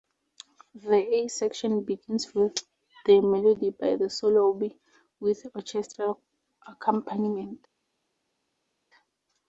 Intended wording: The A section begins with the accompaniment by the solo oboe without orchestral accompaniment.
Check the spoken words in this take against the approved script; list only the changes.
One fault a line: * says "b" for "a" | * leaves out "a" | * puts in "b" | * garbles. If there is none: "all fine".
* says "melody" for "accompaniment"
* says "with" for "without"